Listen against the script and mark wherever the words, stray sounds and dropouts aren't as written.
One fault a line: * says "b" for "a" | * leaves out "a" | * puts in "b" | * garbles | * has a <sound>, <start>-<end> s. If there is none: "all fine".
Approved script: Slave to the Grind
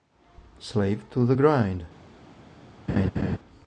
* has a laugh, 2.9-3.4 s